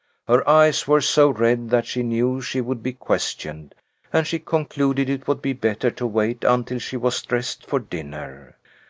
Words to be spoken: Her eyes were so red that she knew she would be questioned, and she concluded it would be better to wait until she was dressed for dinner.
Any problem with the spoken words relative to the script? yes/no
no